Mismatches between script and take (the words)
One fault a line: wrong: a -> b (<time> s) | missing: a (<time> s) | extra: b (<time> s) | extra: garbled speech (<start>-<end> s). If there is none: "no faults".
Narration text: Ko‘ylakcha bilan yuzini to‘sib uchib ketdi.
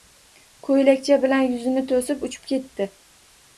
no faults